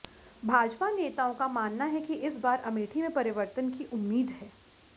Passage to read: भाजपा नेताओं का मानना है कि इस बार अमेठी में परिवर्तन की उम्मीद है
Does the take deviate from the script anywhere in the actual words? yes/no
no